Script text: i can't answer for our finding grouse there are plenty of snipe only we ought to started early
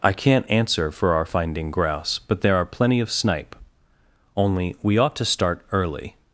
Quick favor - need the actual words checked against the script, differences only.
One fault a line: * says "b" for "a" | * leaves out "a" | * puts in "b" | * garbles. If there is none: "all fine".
* puts in "but"
* says "start" for "started"